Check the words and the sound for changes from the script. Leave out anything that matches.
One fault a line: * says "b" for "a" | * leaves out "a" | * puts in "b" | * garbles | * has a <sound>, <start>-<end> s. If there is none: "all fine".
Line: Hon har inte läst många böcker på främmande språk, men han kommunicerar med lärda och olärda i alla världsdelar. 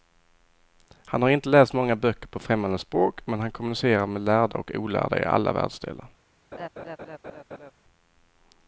* says "Han" for "Hon"
* has a laugh, 6.5-7.7 s